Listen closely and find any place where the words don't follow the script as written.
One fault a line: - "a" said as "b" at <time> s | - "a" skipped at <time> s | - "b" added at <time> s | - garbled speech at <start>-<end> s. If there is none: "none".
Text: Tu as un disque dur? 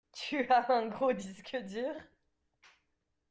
- "gros" added at 0.9 s